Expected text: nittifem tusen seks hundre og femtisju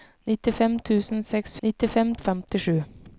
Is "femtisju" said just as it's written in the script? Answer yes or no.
yes